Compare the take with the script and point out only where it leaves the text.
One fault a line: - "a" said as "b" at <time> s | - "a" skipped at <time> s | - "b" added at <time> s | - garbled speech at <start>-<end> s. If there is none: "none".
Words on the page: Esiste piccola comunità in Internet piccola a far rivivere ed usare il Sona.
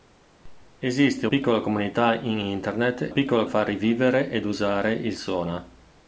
none